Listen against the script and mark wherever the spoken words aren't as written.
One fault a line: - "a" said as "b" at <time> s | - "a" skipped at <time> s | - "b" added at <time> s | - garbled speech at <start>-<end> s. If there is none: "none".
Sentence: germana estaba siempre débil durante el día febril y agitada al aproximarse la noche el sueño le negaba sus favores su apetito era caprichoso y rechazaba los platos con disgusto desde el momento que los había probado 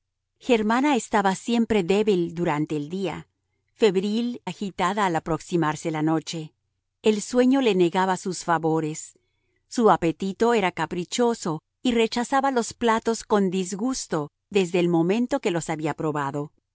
- "y" skipped at 4.4 s